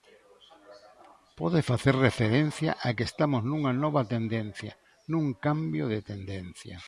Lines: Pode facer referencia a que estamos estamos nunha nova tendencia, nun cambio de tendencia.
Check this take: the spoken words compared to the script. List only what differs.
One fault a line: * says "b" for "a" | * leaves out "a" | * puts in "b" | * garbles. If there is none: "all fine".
* leaves out "estamos"